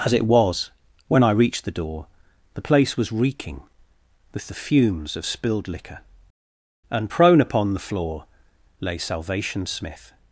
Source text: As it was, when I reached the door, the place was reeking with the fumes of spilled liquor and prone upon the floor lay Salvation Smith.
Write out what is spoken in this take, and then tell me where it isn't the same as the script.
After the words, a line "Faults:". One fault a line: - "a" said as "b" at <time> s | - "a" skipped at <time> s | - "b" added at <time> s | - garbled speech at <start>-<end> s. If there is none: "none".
As it was, when I reached the door, the place was reeking with the fumes of spilled liquor and prone upon the floor lay Salvation Smith.
Faults:
none